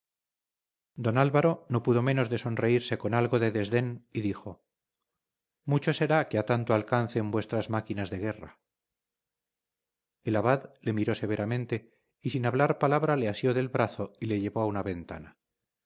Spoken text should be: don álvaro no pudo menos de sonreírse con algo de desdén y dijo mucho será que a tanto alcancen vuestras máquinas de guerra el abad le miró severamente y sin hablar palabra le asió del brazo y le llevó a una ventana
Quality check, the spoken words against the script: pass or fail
pass